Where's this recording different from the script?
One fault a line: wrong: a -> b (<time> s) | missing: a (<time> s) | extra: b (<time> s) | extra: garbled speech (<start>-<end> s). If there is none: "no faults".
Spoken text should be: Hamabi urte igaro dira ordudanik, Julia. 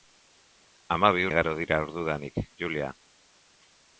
missing: urte (1.3 s)